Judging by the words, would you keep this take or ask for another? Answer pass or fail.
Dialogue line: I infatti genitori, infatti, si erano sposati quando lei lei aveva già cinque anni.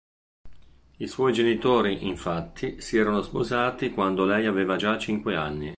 fail